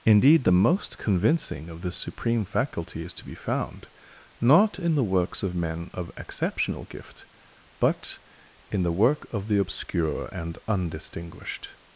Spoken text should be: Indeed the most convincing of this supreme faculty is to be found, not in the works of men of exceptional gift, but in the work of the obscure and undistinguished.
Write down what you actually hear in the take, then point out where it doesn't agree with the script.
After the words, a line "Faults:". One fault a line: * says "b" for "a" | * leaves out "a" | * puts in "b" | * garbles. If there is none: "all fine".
Indeed the most convincing of this supreme faculty is to be found, not in the works of men of exceptional gift, but in the work of the obscure and undistinguished.
Faults:
all fine